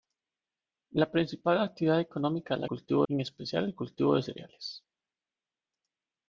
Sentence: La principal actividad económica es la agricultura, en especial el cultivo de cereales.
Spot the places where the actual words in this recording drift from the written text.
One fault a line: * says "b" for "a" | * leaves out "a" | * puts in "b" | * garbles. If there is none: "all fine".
* says "cultivo" for "agricultura"